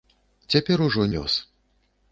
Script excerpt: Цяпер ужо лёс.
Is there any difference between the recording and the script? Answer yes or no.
no